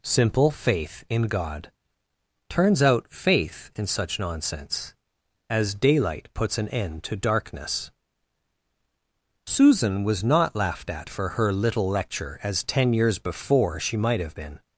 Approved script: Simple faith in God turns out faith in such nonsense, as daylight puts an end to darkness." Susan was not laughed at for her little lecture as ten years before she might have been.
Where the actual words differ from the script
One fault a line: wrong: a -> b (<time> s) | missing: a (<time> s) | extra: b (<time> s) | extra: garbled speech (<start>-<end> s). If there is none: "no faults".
no faults